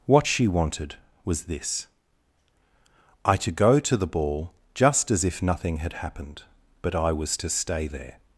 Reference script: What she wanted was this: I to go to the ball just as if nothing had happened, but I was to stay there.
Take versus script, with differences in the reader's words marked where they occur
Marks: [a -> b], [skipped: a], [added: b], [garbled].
What she wanted was this: I to go to the ball just as if nothing had happened, but I was to stay there.